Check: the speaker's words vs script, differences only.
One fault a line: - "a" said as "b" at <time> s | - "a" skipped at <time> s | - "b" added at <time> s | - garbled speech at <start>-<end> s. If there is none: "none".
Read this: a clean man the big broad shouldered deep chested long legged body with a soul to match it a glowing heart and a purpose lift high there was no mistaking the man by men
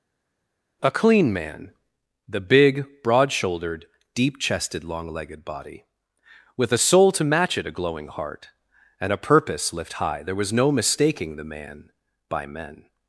none